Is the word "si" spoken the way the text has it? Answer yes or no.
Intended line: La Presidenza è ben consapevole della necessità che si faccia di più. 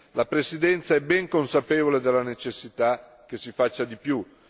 yes